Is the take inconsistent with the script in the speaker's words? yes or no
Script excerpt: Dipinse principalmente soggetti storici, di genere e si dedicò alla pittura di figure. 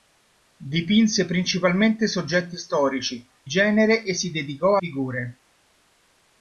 yes